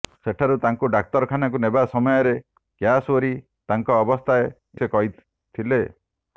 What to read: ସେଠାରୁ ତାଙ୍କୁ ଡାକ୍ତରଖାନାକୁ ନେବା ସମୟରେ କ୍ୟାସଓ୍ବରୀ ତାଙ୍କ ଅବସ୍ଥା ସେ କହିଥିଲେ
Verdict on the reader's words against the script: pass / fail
pass